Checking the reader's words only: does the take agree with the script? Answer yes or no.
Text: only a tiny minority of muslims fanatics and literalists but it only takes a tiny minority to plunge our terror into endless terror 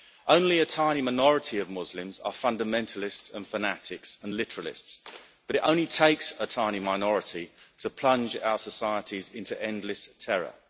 no